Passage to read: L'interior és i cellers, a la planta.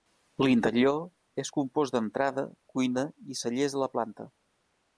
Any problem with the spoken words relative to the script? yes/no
yes